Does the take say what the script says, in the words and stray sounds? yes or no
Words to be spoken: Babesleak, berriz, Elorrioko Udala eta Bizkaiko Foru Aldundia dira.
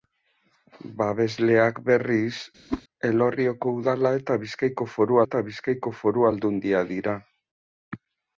no